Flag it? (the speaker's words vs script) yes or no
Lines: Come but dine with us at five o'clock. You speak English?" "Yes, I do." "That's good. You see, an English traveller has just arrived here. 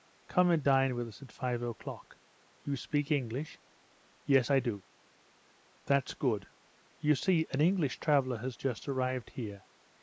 yes